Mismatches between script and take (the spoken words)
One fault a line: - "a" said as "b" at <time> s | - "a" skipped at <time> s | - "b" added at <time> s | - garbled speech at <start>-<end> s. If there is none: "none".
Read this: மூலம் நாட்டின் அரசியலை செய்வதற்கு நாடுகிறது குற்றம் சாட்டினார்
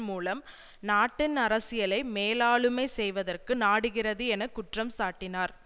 - "மேலாளுமை" added at 2.1 s
- "என" added at 4.3 s